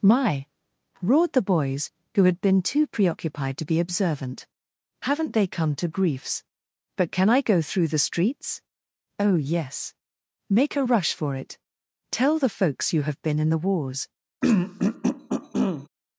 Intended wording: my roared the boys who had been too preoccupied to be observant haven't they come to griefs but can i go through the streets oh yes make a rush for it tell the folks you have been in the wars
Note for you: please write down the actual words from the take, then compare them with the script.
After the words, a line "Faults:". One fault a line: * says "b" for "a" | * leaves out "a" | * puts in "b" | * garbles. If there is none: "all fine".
my roared the boys who had been too preoccupied to be observant haven't they come to griefs but can i go through the streets oh yes make a rush for it tell the folks you have been in the wars
Faults:
all fine